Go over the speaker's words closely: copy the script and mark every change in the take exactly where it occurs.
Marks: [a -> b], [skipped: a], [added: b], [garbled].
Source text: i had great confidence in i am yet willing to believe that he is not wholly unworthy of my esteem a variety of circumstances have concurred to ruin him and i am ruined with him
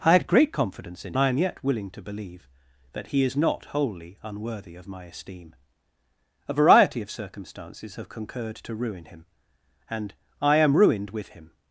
i had great confidence in i am yet willing to believe that he is not wholly unworthy of my esteem a variety of circumstances have concurred to ruin him and i am ruined with him